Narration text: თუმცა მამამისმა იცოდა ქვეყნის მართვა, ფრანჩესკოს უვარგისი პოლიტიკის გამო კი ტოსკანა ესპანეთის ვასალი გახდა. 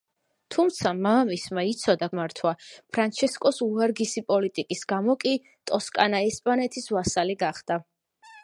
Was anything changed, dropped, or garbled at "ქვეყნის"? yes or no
yes